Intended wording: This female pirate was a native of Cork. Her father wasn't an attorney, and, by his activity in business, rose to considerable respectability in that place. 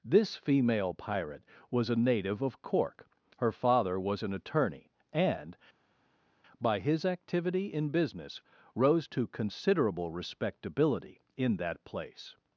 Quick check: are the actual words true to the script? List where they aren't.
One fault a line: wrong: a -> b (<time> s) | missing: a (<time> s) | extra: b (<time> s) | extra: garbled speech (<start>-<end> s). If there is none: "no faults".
wrong: wasn't -> was (4.0 s)